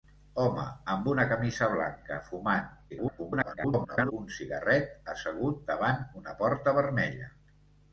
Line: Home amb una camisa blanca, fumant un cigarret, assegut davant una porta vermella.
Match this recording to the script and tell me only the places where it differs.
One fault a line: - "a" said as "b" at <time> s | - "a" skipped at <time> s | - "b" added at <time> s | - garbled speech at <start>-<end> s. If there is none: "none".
- garbled speech at 2.9-4.1 s